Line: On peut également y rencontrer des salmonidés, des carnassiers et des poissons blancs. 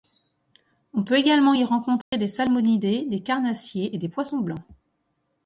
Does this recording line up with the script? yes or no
yes